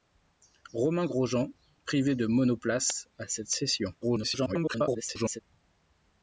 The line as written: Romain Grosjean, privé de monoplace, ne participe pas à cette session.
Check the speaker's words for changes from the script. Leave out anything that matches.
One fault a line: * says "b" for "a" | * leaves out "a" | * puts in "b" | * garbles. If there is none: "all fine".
* leaves out "ne participe pas"
* garbles